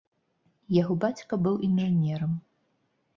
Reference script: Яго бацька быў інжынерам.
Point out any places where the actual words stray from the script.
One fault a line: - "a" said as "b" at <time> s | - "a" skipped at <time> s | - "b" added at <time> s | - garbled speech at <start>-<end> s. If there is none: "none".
none